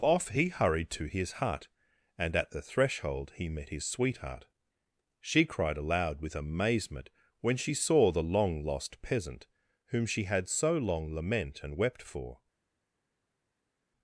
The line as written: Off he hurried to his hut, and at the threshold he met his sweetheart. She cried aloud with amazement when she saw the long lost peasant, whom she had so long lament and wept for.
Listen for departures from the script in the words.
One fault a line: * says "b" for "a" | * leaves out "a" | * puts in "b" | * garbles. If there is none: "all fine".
all fine